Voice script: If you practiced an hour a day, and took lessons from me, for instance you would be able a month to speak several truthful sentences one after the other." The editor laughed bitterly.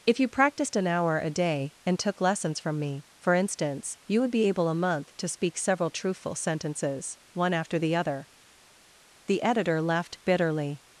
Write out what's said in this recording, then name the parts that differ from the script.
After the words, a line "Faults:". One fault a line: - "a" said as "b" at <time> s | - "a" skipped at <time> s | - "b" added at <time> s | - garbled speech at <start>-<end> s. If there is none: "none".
If you practiced an hour a day, and took lessons from me, for instance you would be able a month to speak several truthful sentences one after the other." The editor laughed bitterly.
Faults:
none